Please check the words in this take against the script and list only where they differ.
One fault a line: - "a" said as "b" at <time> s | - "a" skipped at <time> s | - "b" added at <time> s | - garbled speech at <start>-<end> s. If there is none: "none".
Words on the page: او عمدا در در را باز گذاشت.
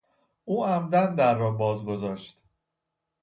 - "در" skipped at 1.4 s